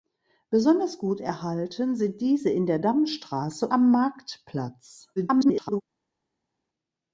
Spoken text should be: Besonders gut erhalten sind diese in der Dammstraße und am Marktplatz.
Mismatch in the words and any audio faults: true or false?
true